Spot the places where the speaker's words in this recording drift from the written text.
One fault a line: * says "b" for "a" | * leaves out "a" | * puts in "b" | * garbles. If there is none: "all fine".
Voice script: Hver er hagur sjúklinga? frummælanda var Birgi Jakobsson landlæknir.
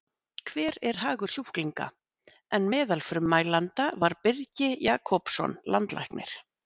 * puts in "en meðal"